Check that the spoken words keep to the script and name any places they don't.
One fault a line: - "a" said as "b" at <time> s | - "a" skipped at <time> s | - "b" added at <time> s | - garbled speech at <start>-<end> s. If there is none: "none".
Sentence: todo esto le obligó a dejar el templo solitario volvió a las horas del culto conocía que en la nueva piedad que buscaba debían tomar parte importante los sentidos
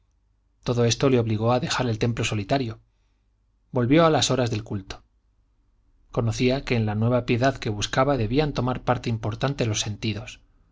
none